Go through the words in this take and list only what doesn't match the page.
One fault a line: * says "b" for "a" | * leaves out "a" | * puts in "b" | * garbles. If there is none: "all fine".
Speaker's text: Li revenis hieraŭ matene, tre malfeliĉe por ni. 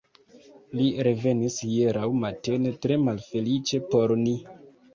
all fine